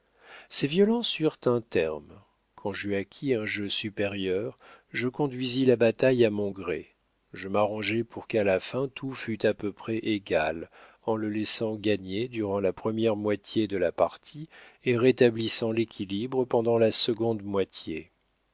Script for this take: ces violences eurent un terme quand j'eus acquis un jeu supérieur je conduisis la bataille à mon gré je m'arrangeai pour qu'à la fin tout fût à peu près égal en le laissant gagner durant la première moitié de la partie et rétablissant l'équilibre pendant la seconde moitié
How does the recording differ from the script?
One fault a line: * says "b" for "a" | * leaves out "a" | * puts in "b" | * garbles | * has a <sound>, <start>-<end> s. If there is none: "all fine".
all fine